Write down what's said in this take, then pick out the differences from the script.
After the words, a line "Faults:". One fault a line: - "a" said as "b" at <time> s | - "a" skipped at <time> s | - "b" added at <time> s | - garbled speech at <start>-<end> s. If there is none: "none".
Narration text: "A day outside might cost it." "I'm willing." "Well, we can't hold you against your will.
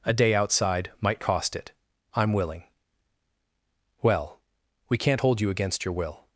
"A day outside might cost it." "I'm willing." "Well, we can't hold you against your will.
Faults:
none